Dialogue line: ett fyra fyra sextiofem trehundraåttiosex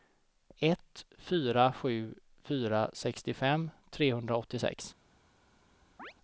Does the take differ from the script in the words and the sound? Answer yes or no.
yes